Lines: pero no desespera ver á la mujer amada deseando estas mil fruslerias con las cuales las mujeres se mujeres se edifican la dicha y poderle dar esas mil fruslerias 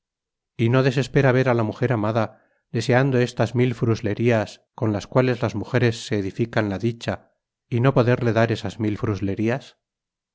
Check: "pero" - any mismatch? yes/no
yes